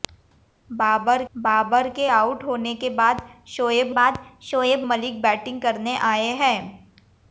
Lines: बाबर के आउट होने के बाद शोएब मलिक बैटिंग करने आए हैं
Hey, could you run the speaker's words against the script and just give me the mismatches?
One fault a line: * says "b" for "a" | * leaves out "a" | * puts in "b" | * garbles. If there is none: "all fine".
* puts in "बाबर"
* puts in "बाद शोएब"